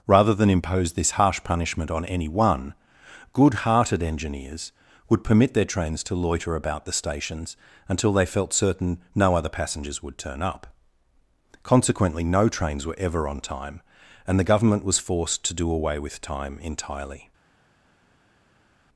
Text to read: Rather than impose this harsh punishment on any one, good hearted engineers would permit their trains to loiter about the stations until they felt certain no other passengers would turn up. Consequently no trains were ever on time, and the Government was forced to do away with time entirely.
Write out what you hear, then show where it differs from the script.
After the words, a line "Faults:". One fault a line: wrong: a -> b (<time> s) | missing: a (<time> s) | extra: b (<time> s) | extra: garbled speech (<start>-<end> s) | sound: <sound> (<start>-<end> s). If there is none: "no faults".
Rather than impose this harsh punishment on any one, good hearted engineers would permit their trains to loiter about the stations until they felt certain no other passengers would turn up. Consequently no trains were ever on time, and the Government was forced to do away with time entirely.
Faults:
no faults